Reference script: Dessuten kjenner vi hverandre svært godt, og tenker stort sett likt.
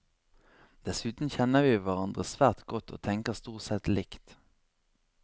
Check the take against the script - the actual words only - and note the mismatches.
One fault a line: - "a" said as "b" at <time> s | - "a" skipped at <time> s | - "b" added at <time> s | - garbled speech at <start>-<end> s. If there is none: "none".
none